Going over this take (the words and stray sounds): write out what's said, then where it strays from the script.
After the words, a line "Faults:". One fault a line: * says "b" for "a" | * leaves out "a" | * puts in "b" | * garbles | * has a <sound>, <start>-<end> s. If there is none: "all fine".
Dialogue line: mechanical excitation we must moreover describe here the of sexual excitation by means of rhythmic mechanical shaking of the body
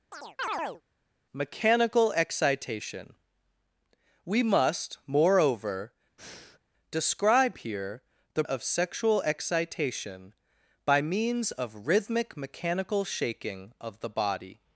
mechanical excitation we must moreover describe here the of sexual excitation by means of rhythmic mechanical shaking of the body
Faults:
* has a chirp, 0.1-0.8 s
* has a breath, 6.2-6.6 s